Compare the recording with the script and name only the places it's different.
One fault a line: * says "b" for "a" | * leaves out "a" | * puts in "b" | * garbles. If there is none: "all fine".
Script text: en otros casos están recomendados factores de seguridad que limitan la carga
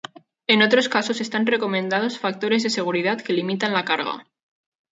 all fine